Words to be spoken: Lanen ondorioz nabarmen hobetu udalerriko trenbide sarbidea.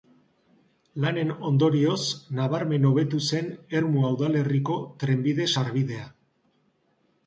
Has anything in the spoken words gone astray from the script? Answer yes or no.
yes